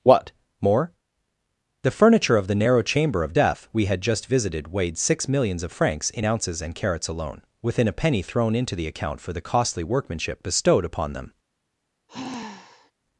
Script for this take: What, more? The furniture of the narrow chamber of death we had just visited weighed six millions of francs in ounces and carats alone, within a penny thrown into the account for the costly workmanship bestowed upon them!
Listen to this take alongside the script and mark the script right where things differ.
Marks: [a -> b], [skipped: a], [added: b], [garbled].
What, more? The furniture of the narrow chamber of death we had just visited weighed six millions of francs in ounces and carats alone, within a penny thrown into the account for the costly workmanship bestowed upon them!